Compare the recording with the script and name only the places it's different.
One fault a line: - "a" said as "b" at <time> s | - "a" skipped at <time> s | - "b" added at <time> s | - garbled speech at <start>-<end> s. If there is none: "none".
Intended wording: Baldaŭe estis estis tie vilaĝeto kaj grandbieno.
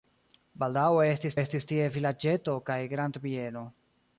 none